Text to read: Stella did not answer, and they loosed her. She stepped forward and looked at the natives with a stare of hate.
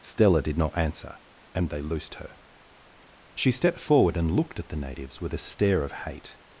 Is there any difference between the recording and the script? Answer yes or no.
no